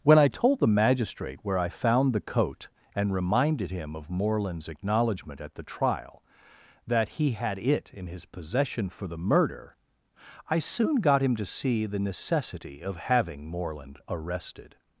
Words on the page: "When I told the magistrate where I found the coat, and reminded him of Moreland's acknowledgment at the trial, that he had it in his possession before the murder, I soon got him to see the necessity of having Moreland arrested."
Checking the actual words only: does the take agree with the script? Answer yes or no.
no